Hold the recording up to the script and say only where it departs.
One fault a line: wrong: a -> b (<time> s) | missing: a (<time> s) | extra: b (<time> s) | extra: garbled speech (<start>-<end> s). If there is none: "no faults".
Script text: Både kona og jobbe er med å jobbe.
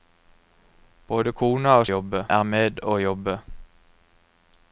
no faults